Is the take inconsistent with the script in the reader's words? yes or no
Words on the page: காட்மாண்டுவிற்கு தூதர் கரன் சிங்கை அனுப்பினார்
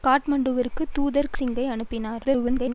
yes